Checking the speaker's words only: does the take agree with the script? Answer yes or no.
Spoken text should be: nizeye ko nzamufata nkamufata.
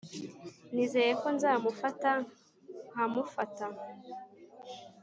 yes